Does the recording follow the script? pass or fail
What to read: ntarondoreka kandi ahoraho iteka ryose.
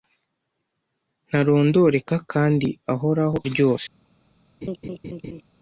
fail